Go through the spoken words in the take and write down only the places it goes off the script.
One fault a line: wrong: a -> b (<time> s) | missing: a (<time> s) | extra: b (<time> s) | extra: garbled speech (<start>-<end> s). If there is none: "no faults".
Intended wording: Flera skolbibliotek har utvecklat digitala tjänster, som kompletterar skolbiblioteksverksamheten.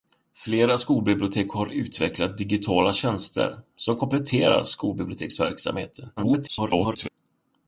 extra: garbled speech (6.2-7.1 s)